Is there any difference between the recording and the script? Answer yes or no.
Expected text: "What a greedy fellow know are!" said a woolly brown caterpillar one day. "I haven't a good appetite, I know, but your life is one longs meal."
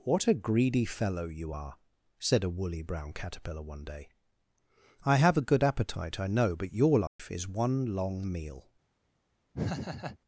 yes